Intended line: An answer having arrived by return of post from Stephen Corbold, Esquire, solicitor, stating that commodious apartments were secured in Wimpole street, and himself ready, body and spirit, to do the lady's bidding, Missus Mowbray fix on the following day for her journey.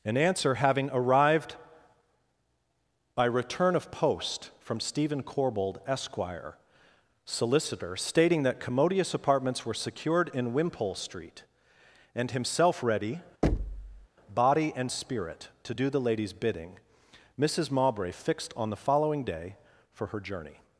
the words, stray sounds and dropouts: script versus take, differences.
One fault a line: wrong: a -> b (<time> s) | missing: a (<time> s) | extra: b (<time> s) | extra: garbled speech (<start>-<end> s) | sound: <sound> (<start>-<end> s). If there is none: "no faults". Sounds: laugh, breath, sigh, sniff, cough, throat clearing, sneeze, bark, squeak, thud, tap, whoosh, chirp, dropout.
sound: thud (13.4-14.1 s)
wrong: fix -> fixed (18.1 s)